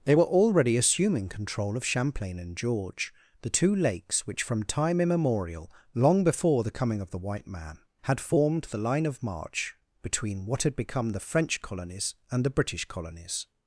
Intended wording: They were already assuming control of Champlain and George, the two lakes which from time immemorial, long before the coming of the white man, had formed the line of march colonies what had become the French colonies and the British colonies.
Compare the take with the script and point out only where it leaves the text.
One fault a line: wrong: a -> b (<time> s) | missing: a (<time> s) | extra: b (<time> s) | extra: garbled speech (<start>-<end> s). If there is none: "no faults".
wrong: colonies -> between (10.0 s)